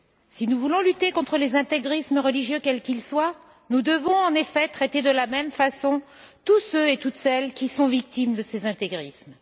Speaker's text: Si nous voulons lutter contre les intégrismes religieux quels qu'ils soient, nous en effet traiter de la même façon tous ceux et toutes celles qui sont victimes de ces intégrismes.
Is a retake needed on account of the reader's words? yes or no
yes